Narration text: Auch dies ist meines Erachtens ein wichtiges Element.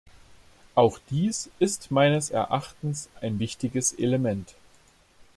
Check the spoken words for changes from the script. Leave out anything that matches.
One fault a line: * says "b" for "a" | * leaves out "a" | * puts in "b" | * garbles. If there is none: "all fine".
all fine